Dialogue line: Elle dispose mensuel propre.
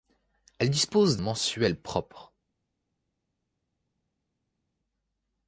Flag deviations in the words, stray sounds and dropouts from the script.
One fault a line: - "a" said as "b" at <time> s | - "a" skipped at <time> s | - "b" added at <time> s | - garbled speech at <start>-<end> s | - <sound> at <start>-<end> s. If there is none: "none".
none